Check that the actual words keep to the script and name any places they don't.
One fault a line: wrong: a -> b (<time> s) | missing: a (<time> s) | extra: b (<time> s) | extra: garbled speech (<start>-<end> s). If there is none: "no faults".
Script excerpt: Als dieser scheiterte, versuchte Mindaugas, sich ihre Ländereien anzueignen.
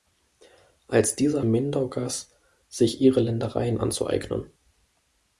missing: scheiterte versuchte (1.4 s)